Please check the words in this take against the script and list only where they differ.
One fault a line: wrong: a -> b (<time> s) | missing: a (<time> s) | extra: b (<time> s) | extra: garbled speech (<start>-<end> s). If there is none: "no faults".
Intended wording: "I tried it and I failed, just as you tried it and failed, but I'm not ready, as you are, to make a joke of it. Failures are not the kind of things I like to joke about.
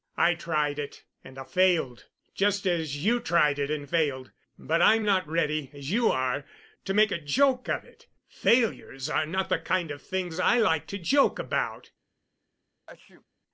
no faults